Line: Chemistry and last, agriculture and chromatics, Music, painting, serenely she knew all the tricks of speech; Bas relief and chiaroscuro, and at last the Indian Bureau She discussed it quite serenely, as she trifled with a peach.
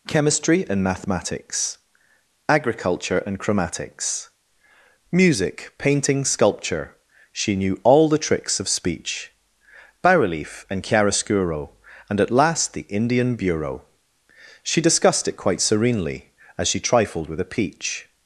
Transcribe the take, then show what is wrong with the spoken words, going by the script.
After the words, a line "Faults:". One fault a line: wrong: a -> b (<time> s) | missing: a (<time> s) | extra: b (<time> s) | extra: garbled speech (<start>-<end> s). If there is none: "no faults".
Chemistry and mathematics, agriculture and chromatics, Music, painting, sculpture she knew all the tricks of speech; Bas relief and chiaroscuro, and at last the Indian Bureau She discussed it quite serenely, as she trifled with a peach.
Faults:
wrong: last -> mathematics (0.8 s)
wrong: serenely -> sculpture (6.2 s)